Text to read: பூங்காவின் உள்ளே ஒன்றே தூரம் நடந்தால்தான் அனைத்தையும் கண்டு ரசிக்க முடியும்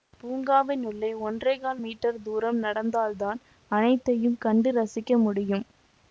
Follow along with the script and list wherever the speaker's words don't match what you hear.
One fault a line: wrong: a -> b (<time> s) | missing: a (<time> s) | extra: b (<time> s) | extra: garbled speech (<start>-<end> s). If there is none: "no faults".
extra: கால் மீட்டர் (1.6 s)